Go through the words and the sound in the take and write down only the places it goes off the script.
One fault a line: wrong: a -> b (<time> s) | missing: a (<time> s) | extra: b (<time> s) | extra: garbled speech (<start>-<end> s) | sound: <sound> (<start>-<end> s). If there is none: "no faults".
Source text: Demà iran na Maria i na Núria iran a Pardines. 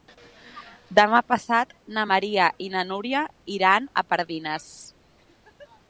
wrong: iran -> passat (1.3 s)